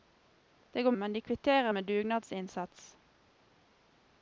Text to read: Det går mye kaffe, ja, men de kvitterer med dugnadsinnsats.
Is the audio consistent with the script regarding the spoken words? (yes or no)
no